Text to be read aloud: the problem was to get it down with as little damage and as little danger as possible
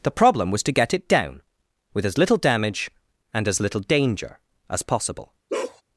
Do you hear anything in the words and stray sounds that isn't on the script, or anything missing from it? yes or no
yes